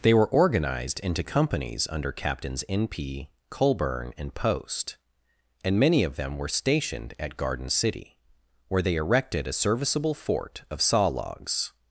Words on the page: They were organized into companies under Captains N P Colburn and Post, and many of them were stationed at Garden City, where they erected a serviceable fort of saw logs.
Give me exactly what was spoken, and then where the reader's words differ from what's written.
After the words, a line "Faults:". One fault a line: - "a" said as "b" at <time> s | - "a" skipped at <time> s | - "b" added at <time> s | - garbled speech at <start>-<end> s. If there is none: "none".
They were organized into companies under Captains N P Colburn and Post, and many of them were stationed at Garden City, where they erected a serviceable fort of saw logs.
Faults:
none